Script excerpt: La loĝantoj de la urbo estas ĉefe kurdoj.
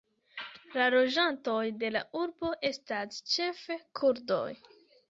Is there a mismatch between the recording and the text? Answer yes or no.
no